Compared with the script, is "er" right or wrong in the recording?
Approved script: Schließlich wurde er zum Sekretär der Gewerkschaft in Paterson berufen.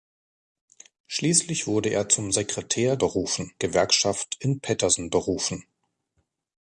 right